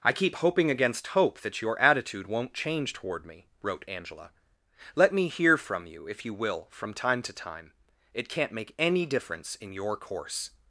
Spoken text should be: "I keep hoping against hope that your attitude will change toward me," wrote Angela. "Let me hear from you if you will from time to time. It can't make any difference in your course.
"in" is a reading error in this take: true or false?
false